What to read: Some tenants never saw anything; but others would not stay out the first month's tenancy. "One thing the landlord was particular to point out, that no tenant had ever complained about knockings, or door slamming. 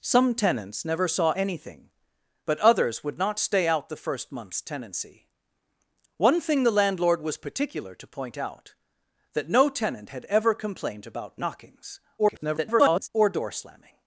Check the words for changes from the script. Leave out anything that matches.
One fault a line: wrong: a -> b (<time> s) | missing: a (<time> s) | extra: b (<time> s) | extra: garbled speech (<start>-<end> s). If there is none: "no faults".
extra: garbled speech (12.2-13.1 s)